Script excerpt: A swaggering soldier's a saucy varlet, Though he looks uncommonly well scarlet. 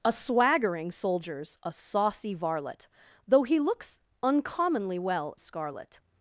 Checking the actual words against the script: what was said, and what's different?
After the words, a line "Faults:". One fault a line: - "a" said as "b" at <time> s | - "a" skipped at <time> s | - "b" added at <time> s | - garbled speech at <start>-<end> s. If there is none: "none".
A swaggering soldier's a saucy varlet, Though he looks uncommonly well scarlet.
Faults:
none